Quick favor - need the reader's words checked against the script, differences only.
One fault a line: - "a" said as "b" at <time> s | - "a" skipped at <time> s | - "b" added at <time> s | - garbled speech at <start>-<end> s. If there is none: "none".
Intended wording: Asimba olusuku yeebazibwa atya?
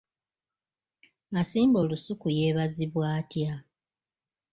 none